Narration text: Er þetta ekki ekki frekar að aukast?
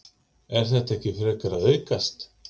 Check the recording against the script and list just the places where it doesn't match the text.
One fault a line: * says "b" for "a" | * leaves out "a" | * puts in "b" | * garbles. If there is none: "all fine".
* leaves out "ekki"